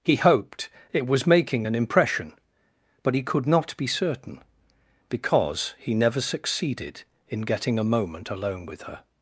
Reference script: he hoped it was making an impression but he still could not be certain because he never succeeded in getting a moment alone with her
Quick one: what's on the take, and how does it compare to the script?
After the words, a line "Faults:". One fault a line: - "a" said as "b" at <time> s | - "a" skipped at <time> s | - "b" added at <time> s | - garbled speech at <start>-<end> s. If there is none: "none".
he hoped it was making an impression but he could not be certain because he never succeeded in getting a moment alone with her
Faults:
- "still" skipped at 3.2 s